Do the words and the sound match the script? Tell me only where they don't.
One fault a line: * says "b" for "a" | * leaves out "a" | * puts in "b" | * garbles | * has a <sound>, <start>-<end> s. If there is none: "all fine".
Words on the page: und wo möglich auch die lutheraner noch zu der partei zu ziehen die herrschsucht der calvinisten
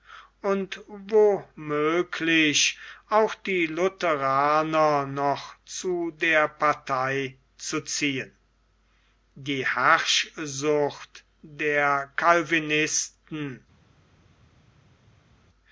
all fine